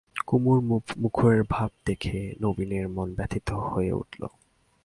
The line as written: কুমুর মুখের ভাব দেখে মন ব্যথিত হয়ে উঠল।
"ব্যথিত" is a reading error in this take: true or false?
false